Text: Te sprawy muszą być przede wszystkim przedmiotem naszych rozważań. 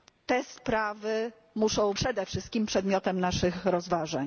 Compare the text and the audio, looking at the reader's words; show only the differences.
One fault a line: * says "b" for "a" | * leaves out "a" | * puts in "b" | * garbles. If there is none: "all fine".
* leaves out "być"